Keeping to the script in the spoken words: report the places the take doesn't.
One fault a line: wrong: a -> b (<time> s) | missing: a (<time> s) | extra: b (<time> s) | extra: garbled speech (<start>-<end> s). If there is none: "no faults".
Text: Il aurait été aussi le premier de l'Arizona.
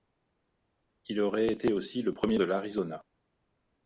no faults